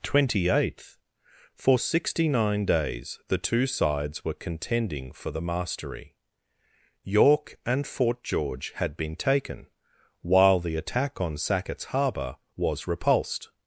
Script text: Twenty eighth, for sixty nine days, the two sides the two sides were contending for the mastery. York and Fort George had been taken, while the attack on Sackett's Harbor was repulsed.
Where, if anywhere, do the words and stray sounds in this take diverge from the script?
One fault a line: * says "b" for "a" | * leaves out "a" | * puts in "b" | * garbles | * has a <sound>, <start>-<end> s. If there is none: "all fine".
* leaves out "the two sides"